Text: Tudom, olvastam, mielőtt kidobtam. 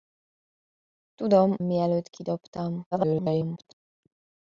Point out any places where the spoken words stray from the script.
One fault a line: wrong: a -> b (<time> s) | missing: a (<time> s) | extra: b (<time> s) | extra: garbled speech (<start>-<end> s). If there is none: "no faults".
missing: olvastam (1.6 s)
extra: garbled speech (2.9-3.8 s)